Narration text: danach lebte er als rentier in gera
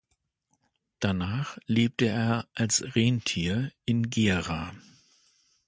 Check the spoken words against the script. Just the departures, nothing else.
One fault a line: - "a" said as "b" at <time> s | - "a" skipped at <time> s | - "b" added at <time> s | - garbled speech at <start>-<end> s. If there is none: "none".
none